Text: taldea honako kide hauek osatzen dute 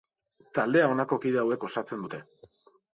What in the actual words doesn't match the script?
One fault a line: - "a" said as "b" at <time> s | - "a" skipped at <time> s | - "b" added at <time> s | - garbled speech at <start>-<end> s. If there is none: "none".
none